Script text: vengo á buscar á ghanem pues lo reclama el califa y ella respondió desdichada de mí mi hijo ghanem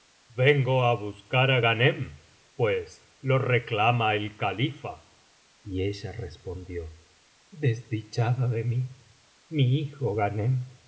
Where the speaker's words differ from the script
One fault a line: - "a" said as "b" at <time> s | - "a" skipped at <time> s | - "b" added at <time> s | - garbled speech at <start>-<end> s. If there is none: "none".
none